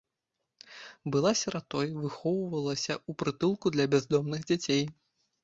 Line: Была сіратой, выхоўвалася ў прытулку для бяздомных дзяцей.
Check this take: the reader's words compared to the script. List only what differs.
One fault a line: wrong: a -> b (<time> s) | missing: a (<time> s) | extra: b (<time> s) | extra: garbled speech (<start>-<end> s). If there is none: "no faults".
no faults